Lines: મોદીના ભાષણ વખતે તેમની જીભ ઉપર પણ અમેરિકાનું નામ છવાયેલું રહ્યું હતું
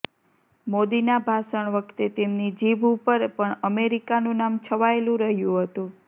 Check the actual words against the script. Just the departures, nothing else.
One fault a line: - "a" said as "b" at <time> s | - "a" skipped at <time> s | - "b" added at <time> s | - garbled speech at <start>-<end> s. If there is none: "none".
none